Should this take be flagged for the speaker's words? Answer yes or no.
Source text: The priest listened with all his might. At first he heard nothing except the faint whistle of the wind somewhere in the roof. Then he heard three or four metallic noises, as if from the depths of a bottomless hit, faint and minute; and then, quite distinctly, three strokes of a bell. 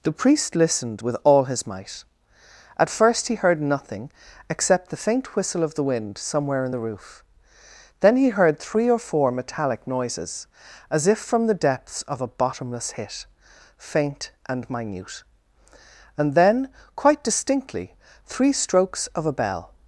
no